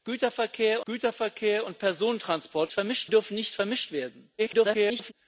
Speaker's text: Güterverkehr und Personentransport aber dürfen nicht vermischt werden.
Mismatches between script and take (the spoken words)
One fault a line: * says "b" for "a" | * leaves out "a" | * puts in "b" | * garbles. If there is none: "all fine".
* puts in "güterverkehr"
* says "vermischt" for "aber"
* garbles